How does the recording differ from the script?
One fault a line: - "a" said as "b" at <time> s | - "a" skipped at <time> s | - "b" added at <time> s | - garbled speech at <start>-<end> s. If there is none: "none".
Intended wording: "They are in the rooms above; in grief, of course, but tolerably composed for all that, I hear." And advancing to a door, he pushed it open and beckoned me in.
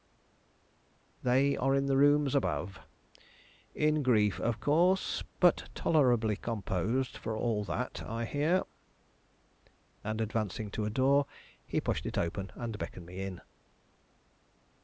none